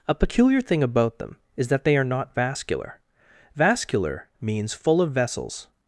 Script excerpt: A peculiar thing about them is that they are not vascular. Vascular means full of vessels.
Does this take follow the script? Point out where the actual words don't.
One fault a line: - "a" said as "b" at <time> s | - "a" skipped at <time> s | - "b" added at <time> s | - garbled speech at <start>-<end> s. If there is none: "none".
none